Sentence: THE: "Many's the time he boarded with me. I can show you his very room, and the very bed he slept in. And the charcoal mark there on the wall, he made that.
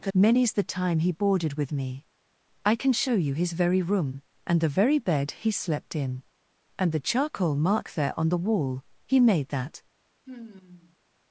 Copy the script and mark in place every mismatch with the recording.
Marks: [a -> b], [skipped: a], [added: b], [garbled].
THE: "Many's the time he boarded with me. I can show you his very room, and the very bed he slept in. And the charcoal mark there on the wall, he made that.